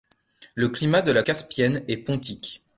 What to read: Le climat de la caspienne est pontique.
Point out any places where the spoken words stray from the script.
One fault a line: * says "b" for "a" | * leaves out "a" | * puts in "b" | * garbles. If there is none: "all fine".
all fine